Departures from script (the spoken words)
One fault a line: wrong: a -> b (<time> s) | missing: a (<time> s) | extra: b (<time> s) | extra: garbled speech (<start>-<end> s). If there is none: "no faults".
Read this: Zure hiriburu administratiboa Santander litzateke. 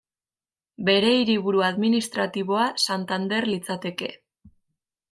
wrong: Zure -> Bere (0.9 s)